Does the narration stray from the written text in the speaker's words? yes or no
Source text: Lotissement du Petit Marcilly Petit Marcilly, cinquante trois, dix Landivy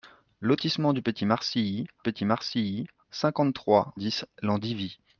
no